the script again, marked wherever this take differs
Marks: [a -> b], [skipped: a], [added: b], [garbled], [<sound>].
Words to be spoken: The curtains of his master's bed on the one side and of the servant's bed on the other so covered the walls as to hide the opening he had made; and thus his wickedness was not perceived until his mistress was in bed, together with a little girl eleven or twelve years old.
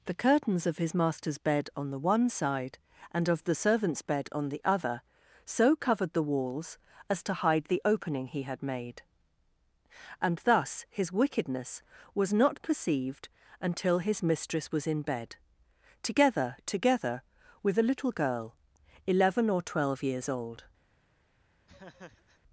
The curtains of his master's bed on the one side and of the servant's bed on the other so covered the walls as to hide the opening he had made; and thus his wickedness was not perceived until his mistress was in bed, together [added: together] with a little girl eleven or twelve years old. [laugh]